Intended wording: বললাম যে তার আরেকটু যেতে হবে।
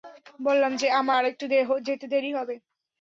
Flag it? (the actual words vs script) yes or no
yes